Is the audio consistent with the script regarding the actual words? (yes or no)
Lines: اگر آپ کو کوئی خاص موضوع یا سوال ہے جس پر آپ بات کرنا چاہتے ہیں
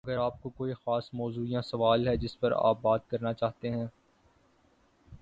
yes